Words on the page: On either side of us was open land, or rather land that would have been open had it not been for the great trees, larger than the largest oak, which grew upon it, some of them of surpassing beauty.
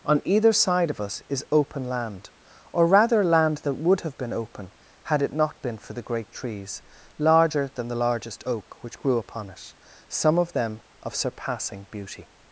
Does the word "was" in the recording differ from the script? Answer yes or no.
yes